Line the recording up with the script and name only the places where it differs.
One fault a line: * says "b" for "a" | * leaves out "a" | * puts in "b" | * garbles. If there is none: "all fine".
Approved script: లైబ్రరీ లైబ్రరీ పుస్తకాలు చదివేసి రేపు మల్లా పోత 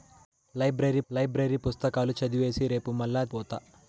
all fine